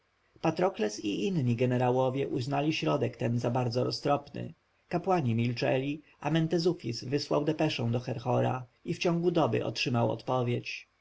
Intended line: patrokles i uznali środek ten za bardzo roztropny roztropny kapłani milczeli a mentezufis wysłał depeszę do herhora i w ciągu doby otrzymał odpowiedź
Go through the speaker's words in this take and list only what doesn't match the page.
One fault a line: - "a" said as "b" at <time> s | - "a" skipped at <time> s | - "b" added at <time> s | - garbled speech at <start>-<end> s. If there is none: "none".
- "inni jenerałowie" added at 1.3 s
- "roztropny" skipped at 4.5 s